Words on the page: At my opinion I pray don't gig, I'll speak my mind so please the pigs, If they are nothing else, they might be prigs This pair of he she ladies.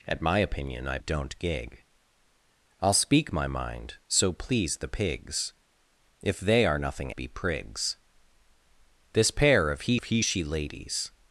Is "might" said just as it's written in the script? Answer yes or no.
no